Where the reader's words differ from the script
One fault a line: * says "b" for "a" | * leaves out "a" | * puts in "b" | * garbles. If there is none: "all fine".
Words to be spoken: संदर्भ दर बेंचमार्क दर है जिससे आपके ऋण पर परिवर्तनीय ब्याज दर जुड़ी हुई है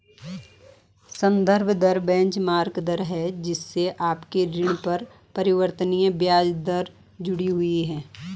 all fine